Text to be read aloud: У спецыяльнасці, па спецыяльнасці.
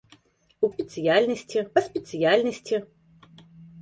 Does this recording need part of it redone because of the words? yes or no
no